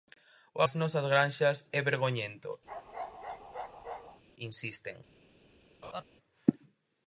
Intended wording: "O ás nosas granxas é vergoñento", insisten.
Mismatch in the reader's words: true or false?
false